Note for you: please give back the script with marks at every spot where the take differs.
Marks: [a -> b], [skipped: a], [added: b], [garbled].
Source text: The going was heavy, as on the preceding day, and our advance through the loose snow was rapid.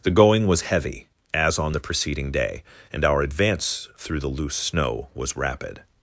The going was heavy, as on the preceding day, and our advance through the loose snow was rapid.